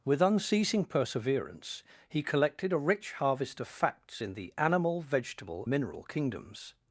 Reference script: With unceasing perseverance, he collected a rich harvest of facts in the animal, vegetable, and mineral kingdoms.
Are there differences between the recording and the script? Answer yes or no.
yes